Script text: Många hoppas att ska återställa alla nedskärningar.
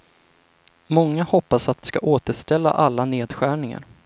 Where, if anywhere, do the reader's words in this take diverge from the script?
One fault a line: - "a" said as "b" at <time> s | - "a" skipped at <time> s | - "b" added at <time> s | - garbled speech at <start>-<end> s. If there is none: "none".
none